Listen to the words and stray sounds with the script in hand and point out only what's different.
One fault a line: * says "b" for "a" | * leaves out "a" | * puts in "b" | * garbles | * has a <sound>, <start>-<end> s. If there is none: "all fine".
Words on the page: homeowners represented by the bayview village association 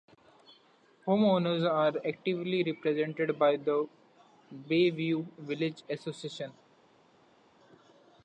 * puts in "are actively"